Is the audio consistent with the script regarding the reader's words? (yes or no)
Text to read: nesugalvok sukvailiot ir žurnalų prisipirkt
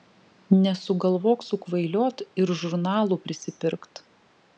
yes